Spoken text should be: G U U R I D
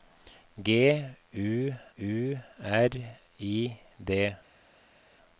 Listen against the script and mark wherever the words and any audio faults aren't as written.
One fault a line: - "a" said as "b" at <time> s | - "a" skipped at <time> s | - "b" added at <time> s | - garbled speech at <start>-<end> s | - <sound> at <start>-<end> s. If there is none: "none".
none